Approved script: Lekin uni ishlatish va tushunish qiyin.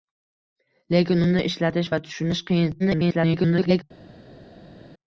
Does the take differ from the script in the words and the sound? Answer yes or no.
yes